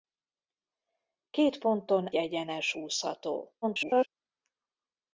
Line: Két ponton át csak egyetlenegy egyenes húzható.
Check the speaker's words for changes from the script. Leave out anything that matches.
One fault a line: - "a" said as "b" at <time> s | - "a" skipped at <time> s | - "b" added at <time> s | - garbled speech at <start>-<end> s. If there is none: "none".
- "át csak egyetlenegy" skipped at 2.1 s
- garbled speech at 3.6-4.1 s